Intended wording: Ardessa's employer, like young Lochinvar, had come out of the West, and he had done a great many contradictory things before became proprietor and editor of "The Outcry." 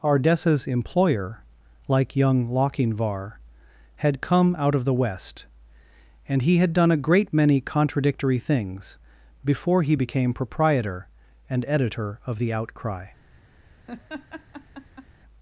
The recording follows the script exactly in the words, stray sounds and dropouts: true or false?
false